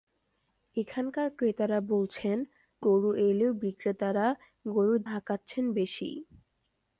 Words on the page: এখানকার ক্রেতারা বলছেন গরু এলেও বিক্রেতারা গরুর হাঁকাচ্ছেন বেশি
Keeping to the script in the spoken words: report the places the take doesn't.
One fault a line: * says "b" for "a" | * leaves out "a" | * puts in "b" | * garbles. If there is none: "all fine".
all fine